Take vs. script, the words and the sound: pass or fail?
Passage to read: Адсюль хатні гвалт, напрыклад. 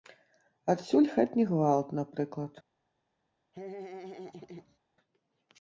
fail